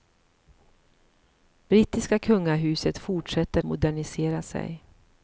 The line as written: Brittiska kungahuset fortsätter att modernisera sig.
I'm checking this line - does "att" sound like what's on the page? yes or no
no